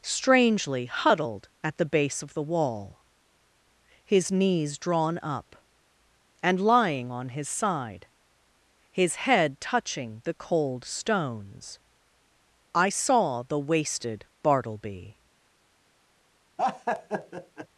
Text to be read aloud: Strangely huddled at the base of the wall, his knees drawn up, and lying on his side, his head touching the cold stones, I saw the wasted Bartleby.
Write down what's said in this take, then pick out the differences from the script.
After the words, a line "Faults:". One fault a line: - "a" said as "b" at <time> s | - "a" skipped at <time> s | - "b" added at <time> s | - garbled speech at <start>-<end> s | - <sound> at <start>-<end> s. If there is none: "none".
Strangely huddled at the base of the wall, his knees drawn up, and lying on his side, his head touching the cold stones, I saw the wasted Bartleby.
Faults:
- laugh at 16.6-17.7 s